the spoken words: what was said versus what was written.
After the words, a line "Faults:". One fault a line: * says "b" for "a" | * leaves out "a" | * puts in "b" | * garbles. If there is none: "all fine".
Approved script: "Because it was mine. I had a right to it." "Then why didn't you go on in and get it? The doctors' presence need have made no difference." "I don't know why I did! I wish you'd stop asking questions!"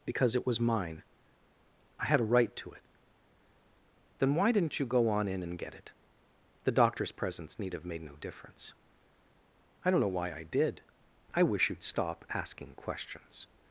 "Because it was mine. I had a right to it." "Then why didn't you go on in and get it? The doctors' presence need have made no difference." "I don't know why I did! I wish you'd stop asking questions!"
Faults:
all fine